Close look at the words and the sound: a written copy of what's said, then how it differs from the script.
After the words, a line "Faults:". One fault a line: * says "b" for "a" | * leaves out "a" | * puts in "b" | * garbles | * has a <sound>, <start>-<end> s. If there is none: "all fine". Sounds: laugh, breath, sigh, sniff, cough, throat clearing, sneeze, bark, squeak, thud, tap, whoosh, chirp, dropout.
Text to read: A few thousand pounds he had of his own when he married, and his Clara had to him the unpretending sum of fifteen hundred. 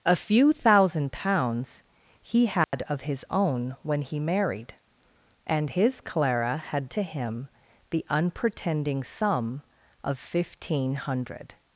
A few thousand pounds he had of his own when he married, and his Clara had to him the unpretending sum of fifteen hundred.
Faults:
* has a dropout, 2.6-2.7 s